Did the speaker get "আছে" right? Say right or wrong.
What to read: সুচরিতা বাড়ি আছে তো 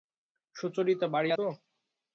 wrong